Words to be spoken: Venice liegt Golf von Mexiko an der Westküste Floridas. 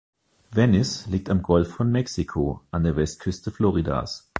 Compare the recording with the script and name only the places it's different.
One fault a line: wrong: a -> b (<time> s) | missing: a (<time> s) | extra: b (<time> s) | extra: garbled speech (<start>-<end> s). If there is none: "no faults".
extra: am (1.3 s)